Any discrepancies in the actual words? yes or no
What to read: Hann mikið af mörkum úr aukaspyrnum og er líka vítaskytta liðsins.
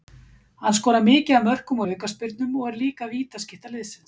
yes